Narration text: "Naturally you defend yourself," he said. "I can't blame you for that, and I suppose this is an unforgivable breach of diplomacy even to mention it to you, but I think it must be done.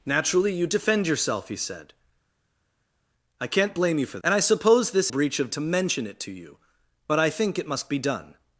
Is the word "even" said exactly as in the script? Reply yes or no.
no